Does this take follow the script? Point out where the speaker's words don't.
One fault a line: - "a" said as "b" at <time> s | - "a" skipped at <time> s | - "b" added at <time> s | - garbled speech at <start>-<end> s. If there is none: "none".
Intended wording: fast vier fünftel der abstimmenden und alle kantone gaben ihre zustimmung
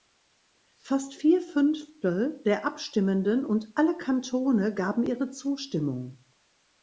none